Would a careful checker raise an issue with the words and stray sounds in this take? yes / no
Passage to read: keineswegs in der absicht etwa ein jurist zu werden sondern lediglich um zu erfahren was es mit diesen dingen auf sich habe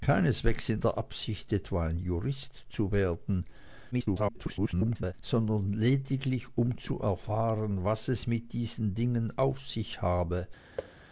yes